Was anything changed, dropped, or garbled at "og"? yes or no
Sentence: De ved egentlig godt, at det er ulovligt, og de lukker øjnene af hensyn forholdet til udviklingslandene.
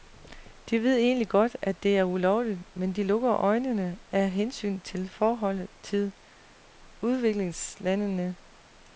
yes